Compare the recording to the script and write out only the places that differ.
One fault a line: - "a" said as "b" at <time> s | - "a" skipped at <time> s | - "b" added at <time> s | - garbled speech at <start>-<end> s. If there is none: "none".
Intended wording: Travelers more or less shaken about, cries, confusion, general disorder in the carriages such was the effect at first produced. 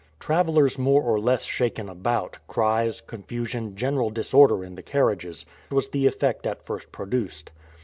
- "such" skipped at 5.5 s